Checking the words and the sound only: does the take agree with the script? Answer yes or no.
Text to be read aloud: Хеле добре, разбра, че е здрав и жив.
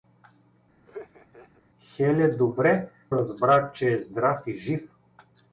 no